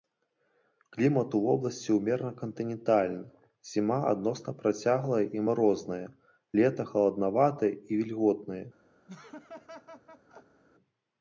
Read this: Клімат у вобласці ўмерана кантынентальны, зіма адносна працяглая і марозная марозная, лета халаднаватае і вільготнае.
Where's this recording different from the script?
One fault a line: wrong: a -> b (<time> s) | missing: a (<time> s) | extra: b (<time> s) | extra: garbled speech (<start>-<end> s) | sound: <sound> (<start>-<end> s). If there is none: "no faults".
missing: марозная (6.0 s)
sound: laugh (9.1-10.6 s)